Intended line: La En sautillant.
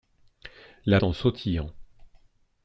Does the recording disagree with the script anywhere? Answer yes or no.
no